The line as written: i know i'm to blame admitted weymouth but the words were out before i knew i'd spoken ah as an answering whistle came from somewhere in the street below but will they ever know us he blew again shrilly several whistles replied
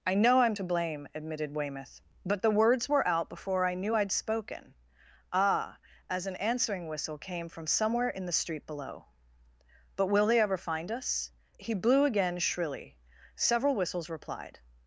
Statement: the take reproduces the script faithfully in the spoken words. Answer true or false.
false